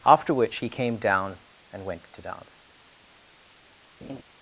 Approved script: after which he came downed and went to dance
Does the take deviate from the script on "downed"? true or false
true